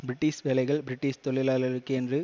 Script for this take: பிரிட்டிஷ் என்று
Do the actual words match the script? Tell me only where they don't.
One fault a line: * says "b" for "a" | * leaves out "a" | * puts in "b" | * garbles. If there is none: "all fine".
* puts in "வேலைகள் பிரிட்டிஷ் தொழிலாளர்களுக்கே"